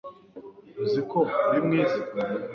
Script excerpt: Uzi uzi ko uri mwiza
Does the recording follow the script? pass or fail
fail